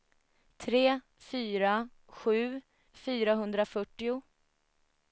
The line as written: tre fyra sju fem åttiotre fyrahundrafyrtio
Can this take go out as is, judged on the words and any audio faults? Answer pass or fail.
fail